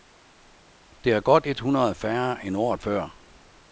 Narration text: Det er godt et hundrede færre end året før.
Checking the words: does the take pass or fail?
pass